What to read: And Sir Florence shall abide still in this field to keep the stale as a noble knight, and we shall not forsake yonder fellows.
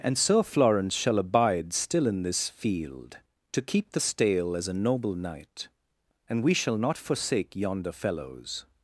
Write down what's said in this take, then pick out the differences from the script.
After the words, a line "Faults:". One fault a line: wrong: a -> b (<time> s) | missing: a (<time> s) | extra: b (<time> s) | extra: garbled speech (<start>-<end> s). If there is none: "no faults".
And Sir Florence shall abide still in this field to keep the stale as a noble knight, and we shall not forsake yonder fellows.
Faults:
no faults